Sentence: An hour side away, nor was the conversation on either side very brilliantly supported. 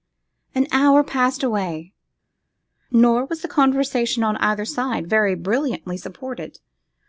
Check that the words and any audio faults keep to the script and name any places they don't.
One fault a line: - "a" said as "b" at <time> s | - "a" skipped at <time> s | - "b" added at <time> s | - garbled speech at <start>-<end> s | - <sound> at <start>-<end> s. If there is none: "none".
- "side" said as "passed" at 1.0 s